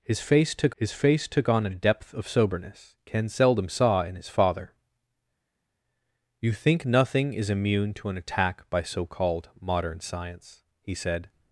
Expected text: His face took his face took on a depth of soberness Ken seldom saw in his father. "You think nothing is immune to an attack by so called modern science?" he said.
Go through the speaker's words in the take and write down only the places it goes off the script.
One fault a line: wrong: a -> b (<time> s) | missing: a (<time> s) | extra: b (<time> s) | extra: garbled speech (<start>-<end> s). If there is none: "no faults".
no faults